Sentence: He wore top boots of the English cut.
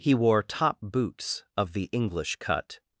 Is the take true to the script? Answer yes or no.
yes